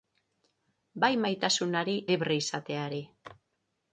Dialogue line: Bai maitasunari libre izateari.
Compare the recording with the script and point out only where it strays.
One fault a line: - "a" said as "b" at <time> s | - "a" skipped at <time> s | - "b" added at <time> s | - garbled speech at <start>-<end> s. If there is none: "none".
none